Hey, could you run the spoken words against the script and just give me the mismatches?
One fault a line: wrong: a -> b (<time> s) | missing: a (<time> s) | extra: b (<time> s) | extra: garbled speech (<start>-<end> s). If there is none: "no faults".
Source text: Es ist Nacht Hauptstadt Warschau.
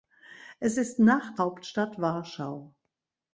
no faults